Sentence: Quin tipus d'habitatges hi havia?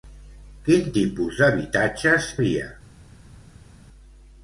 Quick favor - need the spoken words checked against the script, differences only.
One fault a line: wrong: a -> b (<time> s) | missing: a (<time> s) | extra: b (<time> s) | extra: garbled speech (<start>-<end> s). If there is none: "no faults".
missing: hi (2.3 s)